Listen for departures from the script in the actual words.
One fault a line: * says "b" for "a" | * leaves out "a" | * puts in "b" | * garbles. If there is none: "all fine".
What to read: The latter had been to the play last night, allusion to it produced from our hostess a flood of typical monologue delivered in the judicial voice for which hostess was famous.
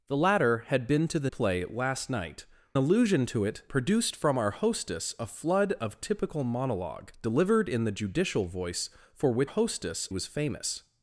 all fine